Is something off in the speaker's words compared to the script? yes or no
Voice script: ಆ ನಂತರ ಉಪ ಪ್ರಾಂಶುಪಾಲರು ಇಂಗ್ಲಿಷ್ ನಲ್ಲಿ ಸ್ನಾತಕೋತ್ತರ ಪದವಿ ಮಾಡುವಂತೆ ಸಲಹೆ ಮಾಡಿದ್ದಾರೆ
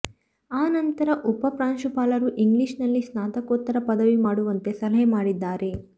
no